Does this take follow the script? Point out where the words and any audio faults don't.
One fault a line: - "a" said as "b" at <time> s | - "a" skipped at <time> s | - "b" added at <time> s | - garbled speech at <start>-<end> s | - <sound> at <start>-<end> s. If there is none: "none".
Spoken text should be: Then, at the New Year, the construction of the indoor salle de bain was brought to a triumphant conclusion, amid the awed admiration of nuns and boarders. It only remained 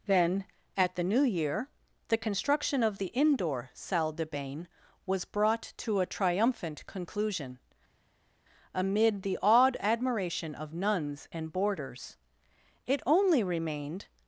none